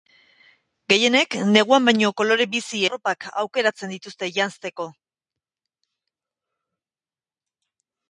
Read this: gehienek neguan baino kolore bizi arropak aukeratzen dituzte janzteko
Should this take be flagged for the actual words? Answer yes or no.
no